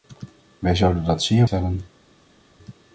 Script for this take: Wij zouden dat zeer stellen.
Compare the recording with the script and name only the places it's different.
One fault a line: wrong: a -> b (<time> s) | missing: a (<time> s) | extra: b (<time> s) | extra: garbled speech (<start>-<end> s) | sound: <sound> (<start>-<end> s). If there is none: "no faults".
no faults